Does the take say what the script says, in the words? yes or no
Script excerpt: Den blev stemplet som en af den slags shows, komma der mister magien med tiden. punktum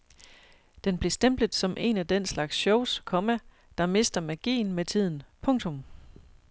yes